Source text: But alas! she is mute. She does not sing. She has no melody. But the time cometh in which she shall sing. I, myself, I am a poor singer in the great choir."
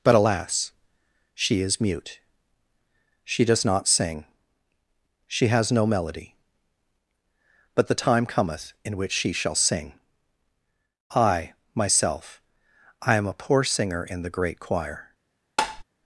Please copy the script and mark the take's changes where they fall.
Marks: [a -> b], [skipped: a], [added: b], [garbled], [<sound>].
But alas! she is mute. She does not sing. She has no melody. But the time cometh in which she shall sing. I, myself, I am a poor singer in the great choir." [tap]